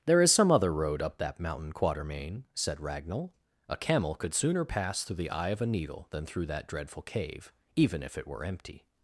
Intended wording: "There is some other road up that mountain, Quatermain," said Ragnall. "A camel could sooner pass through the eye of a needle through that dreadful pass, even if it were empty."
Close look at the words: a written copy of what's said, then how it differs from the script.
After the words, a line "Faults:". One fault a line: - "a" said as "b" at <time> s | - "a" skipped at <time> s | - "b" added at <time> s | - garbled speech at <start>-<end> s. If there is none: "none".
"There is some other road up that mountain, Quatermain," said Ragnall. "A camel could sooner pass through the eye of a needle than through that dreadful cave, even if it were empty."
Faults:
- "than" added at 6.1 s
- "pass" said as "cave" at 7.0 s